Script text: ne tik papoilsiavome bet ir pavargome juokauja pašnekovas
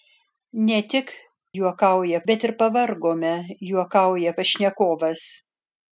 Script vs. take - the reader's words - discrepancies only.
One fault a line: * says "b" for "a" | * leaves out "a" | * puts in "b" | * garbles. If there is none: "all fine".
* says "juokauja" for "papoilsiavome"